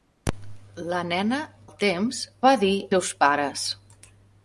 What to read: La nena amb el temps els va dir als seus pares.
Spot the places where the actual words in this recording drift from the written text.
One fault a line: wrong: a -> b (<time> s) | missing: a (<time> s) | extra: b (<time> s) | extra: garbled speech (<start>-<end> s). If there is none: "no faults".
missing: amb (1.4 s)
missing: els (2.2 s)
missing: als (2.7 s)